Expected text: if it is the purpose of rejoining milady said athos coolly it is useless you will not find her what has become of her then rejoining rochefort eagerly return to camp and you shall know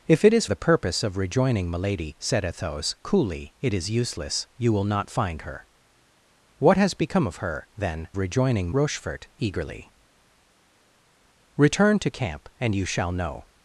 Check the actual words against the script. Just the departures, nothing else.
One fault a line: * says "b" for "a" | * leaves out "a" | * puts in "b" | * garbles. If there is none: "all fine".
all fine